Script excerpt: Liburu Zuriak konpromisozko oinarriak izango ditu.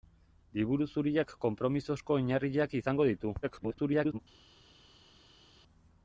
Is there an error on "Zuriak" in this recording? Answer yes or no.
no